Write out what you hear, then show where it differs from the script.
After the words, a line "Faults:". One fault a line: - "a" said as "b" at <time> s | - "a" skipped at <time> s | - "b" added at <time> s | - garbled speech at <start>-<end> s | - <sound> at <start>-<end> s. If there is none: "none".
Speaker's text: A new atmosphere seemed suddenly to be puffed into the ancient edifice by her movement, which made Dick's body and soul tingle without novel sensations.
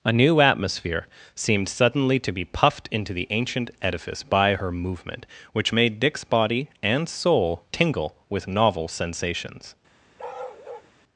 A new atmosphere seemed suddenly to be puffed into the ancient edifice by her movement, which made Dick's body and soul tingle with novel sensations.
Faults:
- "without" said as "with" at 8.3 s
- bark at 10.2-10.9 s